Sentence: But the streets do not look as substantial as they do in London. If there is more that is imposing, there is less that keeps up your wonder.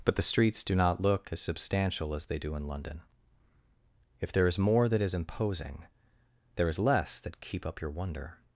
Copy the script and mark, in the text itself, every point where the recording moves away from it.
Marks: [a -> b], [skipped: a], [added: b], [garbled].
But the streets do not look as substantial as they do in London. If there is more that is imposing, there is less that [keeps -> keep] up your wonder.